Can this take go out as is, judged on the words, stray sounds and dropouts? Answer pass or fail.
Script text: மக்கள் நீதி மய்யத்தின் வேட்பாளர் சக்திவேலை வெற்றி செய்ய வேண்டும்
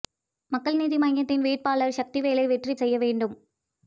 pass